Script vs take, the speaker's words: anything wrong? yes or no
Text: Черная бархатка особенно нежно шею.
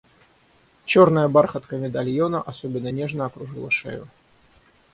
yes